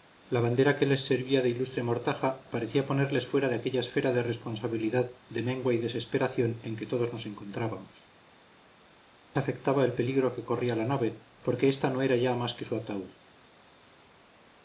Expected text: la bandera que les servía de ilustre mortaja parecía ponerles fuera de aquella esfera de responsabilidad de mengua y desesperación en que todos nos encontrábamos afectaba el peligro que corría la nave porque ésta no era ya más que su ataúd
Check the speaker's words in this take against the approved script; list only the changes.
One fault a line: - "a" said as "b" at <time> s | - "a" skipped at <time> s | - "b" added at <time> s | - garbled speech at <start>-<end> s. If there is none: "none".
none